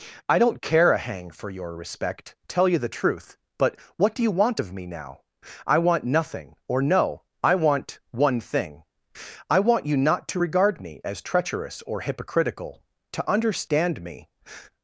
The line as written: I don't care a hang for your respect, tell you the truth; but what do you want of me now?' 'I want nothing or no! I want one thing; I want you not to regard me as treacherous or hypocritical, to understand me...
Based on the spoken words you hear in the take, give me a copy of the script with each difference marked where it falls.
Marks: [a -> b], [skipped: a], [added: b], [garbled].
I don't care a hang for your respect, tell you the truth; but what do you want of me now?' 'I want nothing or no! I want one thing; I want you not to regard me as treacherous or hypocritical, to understand me...